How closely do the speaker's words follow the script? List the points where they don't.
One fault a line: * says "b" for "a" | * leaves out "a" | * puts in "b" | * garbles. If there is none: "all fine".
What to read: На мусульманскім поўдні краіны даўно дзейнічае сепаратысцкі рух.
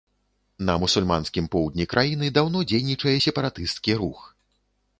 all fine